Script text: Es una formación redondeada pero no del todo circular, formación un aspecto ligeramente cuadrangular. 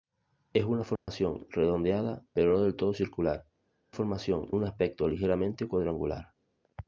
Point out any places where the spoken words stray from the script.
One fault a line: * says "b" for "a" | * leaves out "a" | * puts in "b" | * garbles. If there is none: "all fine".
all fine